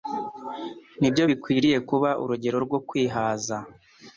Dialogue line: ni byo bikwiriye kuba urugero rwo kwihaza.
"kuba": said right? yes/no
yes